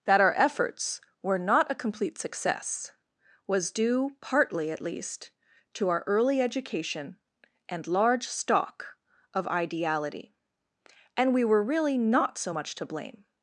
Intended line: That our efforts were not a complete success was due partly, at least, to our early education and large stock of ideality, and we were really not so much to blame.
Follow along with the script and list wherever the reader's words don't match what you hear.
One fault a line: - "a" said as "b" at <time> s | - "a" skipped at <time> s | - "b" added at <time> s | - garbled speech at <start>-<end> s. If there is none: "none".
none